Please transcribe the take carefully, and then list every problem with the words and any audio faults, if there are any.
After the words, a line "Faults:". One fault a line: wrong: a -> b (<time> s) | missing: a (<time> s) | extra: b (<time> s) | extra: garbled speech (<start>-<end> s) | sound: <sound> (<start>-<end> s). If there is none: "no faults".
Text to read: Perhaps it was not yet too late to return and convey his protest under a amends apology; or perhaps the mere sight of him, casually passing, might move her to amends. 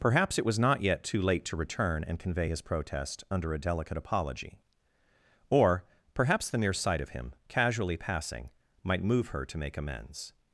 Perhaps it was not yet too late to return and convey his protest under a delicate apology; or perhaps the mere sight of him, casually passing, might move her to make amends.
Faults:
wrong: amends -> delicate (3.6 s)
extra: make (9.6 s)